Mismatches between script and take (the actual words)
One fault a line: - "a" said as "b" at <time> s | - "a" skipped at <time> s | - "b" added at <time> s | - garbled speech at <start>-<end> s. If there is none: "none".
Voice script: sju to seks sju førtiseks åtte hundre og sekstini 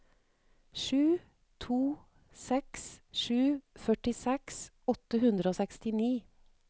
none